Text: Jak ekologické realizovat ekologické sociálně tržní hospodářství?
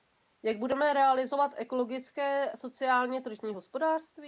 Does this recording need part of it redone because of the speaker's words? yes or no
yes